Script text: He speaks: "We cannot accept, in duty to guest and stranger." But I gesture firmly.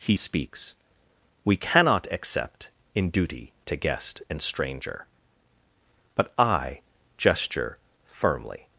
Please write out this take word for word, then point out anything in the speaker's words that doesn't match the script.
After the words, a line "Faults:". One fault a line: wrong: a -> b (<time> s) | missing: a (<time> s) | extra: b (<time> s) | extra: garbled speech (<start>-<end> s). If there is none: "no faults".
He speaks: "We cannot accept, in duty to guest and stranger." But I gesture firmly.
Faults:
no faults